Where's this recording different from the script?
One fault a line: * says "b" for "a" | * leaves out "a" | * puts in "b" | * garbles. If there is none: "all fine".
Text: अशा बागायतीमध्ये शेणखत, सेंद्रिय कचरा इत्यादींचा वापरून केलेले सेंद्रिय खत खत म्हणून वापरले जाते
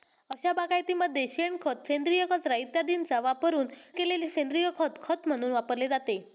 all fine